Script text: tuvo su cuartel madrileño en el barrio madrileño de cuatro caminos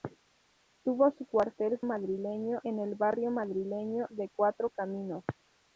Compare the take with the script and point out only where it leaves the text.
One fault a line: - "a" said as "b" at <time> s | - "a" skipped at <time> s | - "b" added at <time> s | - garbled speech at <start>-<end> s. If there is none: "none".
none